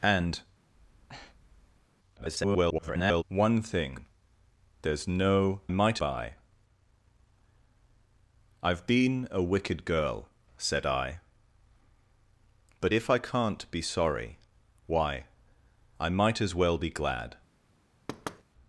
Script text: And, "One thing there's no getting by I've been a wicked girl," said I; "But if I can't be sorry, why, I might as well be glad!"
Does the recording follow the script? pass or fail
fail